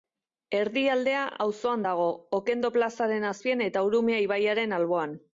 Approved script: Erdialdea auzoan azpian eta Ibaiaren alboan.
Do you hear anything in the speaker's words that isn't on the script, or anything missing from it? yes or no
yes